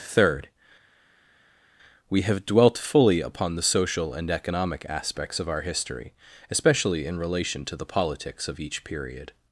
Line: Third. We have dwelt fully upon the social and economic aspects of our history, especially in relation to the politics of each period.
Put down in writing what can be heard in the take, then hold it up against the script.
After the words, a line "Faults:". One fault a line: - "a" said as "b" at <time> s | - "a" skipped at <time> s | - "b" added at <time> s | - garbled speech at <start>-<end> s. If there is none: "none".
Third. We have dwelt fully upon the social and economic aspects of our history, especially in relation to the politics of each period.
Faults:
none